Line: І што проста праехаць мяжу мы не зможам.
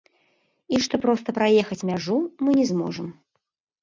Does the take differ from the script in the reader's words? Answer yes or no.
no